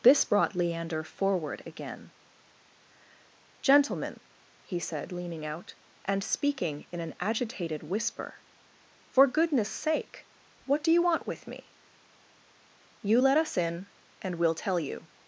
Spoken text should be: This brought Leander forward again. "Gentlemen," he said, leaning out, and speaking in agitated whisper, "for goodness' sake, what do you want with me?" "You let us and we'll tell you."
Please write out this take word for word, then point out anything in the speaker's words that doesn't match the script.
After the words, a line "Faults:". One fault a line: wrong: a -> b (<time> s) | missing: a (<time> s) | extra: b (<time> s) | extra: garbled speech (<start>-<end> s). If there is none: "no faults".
This brought Leander forward again. "Gentlemen," he said, leaning out, and speaking in an agitated whisper, "for goodness' sake, what do you want with me?" "You let us in, and we'll tell you."
Faults:
extra: an (7.0 s)
extra: in (13.6 s)